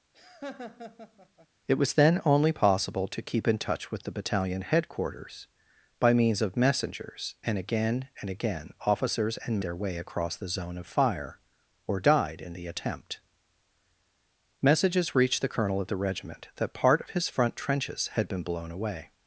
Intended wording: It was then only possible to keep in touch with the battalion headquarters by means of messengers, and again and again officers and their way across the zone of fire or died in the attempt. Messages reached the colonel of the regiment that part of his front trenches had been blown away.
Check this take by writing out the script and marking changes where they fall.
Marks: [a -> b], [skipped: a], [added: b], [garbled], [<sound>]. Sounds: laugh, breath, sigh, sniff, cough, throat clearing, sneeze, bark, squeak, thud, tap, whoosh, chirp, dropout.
[laugh] It was then only possible to keep in touch with the battalion headquarters by means of messengers, and again and again officers and their way across the zone of fire or died in the attempt. Messages reached the colonel of the regiment that part of his front trenches had been blown away.